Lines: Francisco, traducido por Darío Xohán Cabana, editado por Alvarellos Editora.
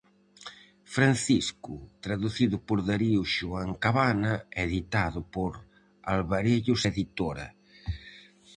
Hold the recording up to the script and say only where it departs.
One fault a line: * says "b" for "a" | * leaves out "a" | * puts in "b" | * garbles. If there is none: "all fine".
all fine